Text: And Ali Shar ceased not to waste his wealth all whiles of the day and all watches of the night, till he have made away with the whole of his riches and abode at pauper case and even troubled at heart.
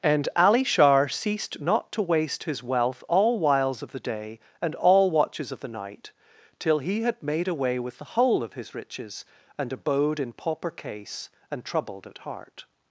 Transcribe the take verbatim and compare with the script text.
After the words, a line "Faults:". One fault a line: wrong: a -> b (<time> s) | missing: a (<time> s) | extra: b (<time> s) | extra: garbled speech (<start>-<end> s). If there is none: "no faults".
And Ali Shar ceased not to waste his wealth all whiles of the day and all watches of the night, till he had made away with the whole of his riches and abode in pauper case and troubled at heart.
Faults:
wrong: have -> had (7.0 s)
wrong: at -> in (10.2 s)
missing: even (11.6 s)